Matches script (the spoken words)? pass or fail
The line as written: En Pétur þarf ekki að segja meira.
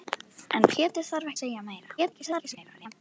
fail